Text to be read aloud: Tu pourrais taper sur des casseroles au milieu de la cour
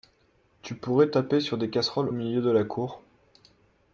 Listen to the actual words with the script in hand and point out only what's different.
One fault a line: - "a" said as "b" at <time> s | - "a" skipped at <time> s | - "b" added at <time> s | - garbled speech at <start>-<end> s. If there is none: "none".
- "au" skipped at 2.1 s